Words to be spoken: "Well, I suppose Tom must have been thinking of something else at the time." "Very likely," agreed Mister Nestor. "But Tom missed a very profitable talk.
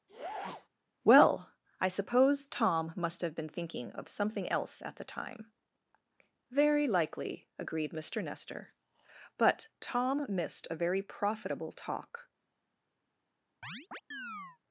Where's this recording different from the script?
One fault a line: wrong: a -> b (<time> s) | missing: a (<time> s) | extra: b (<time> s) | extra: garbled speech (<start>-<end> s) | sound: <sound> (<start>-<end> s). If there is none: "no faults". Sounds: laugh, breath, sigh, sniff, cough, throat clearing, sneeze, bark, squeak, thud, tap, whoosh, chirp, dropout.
sound: sniff (0.1-0.7 s)
sound: chirp (13.6-14.6 s)